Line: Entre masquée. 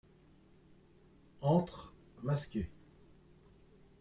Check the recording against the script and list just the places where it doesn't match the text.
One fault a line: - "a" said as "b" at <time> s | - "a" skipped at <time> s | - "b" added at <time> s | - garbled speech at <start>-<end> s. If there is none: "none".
none